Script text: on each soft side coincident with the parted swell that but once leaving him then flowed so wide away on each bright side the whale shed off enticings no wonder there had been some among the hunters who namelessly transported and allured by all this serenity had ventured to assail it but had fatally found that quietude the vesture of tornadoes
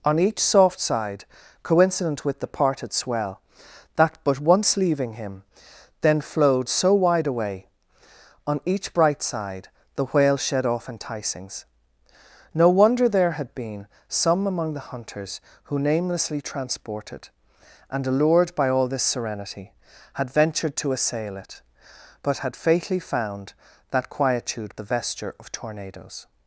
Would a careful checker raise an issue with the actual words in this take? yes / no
no